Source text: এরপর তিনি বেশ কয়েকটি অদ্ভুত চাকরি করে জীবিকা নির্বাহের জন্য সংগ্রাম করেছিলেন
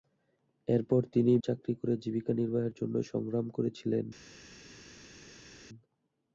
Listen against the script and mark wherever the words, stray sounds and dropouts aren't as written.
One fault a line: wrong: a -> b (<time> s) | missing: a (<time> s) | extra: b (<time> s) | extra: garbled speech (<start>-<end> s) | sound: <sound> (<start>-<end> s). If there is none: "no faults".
missing: বেশ কয়েকটি অদ্ভুত (1.3 s)